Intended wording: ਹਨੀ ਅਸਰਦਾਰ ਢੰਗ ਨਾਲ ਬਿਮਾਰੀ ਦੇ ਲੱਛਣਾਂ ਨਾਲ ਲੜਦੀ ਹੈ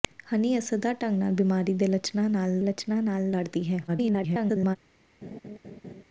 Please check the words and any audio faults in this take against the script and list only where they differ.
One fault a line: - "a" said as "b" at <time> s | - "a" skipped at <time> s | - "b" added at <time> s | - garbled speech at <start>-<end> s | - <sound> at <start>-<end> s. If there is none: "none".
- "ਲੱਛਣਾਂ ਨਾਲ" added at 2.6 s
- garbled speech at 3.9-4.8 s
- laugh at 5.2-6.0 s